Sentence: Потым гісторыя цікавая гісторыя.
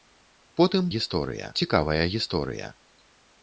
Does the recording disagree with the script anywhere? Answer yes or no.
no